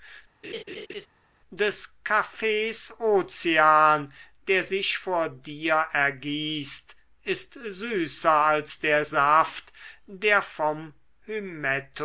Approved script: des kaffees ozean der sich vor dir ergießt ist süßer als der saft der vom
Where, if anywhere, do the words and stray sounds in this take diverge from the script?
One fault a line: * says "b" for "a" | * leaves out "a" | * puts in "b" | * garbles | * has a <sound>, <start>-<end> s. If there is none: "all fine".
* has a laugh, 0.4-1.1 s